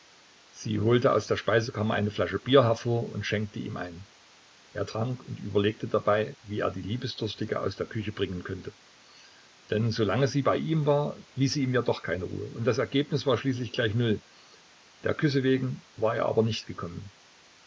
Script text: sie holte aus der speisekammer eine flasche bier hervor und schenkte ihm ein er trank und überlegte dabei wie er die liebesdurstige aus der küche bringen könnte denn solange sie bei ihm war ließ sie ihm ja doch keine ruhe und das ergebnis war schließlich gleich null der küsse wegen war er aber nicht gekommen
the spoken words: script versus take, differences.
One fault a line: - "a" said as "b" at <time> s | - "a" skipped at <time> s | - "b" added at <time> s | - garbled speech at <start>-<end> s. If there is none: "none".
none